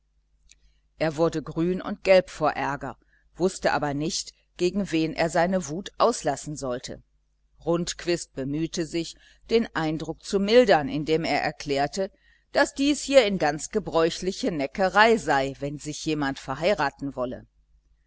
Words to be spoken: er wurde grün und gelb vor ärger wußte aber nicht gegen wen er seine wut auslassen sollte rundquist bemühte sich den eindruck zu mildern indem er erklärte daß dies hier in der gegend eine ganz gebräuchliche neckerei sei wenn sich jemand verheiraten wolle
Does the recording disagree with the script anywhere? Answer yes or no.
yes